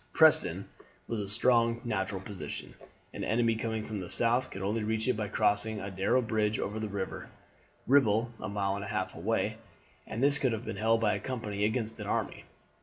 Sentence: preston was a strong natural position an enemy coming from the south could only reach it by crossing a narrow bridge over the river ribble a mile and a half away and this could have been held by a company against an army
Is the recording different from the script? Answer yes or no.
no